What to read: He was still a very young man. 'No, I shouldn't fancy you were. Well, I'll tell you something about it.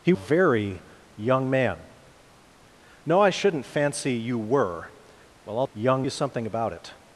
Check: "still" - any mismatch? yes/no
yes